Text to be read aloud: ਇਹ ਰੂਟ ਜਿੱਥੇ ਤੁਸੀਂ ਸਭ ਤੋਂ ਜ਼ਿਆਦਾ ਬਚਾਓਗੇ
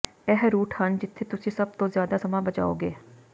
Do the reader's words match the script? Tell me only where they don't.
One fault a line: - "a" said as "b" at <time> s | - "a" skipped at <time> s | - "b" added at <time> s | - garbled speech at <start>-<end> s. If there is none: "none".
- "ਹਨ" added at 0.7 s
- "ਸਮਾਂ" added at 2.2 s